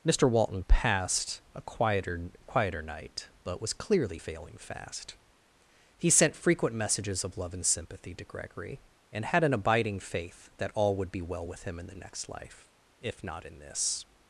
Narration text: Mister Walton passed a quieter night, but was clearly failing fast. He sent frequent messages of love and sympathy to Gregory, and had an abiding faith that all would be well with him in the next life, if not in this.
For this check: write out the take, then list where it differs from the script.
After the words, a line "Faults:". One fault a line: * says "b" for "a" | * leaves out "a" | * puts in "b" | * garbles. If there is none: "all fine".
Mister Walton passed a quieter quieter night, but was clearly failing fast. He sent frequent messages of love and sympathy to Gregory, and had an abiding faith that all would be well with him in the next life, if not in this.
Faults:
* puts in "quieter"